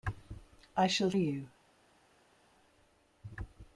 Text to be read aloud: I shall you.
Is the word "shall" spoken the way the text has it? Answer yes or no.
yes